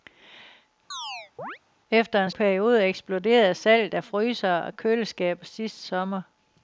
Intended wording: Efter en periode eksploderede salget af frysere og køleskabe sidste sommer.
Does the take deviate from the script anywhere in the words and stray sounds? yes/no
yes